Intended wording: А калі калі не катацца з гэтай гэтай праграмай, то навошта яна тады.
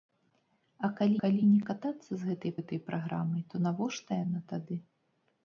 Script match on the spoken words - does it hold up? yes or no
yes